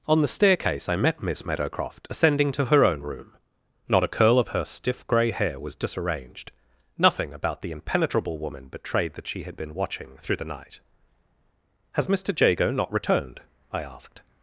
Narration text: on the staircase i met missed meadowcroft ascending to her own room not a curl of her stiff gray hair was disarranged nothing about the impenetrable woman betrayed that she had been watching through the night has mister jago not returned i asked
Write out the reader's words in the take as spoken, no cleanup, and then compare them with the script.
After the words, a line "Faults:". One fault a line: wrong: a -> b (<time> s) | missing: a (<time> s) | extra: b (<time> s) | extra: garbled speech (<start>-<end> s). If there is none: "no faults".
on the staircase i met miss meadowcroft ascending to her own room not a curl of her stiff gray hair was disarranged nothing about the impenetrable woman betrayed that she had been watching through the night has mister jago not returned i asked
Faults:
wrong: missed -> miss (1.2 s)